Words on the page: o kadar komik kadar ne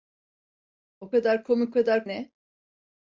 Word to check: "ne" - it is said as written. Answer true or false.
true